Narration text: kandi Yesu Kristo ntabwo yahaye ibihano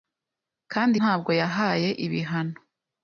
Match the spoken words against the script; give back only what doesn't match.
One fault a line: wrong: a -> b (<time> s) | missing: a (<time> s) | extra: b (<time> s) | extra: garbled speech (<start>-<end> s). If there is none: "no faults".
missing: Yesu Kristo (1.0 s)